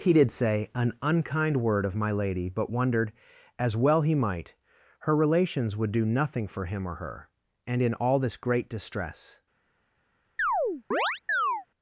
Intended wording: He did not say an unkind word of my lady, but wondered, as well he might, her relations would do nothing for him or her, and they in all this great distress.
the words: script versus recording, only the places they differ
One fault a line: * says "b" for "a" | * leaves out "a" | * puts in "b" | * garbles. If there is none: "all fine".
* leaves out "not"
* leaves out "they"